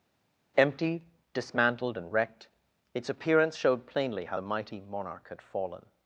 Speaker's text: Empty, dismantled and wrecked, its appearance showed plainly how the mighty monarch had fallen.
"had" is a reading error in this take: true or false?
false